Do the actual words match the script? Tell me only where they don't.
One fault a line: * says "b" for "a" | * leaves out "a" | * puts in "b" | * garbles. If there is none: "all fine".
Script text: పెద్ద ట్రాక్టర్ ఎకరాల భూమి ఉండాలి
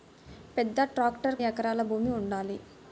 all fine